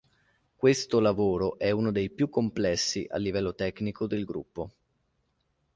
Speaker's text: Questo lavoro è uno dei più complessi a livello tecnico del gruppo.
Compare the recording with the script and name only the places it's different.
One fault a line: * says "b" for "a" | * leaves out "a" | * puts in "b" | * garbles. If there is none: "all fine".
all fine